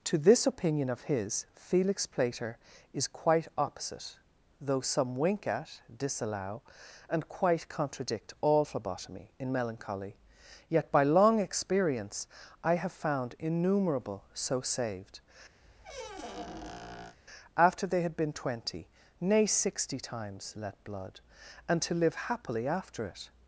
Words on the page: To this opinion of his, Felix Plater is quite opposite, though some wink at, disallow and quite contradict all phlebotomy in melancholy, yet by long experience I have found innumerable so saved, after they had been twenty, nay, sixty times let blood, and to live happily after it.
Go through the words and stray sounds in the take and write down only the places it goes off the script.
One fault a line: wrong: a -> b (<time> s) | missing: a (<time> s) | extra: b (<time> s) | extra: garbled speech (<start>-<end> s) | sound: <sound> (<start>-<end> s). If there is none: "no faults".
sound: squeak (15.6-17.2 s)